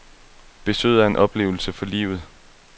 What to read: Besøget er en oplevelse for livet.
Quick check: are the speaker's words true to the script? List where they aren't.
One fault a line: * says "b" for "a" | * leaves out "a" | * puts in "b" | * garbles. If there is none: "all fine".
all fine